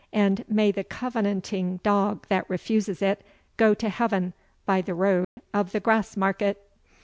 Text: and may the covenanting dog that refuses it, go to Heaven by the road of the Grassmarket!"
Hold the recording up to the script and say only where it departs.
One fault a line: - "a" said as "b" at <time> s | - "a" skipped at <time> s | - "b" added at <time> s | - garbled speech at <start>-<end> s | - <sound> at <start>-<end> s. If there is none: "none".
- dropout at 5.2-5.4 s